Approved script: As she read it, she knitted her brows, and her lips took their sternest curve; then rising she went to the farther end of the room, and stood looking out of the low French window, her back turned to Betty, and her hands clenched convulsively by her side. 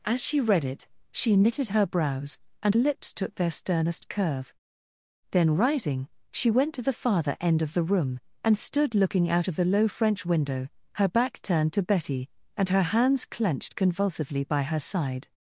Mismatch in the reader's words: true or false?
true